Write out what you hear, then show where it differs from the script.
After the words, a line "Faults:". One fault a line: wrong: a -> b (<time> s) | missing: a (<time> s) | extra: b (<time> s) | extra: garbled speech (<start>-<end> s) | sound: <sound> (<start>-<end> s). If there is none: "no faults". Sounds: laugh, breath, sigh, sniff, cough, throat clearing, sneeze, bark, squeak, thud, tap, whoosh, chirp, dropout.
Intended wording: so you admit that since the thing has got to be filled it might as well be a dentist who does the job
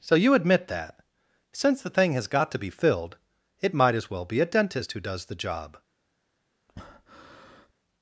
so you admit that since the thing has got to be filled it might as well be a dentist who does the job
Faults:
sound: breath (6.7-7.7 s)